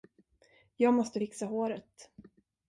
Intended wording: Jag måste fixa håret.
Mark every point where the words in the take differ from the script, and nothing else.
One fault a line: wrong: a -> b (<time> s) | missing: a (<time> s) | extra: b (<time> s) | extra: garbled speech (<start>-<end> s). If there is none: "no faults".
no faults